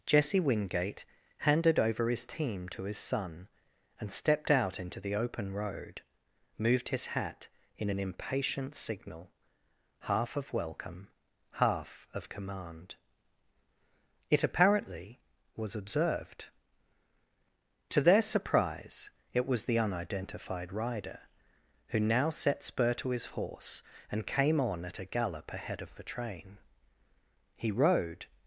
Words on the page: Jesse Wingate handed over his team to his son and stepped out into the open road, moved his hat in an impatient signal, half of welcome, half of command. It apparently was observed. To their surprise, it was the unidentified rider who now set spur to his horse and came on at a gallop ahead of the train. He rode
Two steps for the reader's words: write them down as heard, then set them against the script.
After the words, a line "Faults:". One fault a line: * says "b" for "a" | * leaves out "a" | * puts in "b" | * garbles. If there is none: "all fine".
Jesse Wingate handed over his team to his son and stepped out into the open road, moved his hat in an impatient signal, half of welcome, half of command. It apparently was observed. To their surprise, it was the unidentified rider who now set spur to his horse and came on at a gallop ahead of the train. He rode
Faults:
all fine